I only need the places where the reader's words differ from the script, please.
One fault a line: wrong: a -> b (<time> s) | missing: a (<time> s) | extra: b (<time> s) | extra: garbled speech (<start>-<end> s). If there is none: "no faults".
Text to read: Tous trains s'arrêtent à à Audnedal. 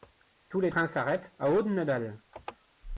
extra: les (0.6 s)
missing: à (1.5 s)